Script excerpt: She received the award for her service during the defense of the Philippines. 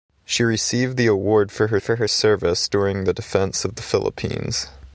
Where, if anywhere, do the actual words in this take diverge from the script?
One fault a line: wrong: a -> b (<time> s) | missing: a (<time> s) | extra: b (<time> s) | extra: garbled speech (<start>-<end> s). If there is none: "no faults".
extra: for her (1.8 s)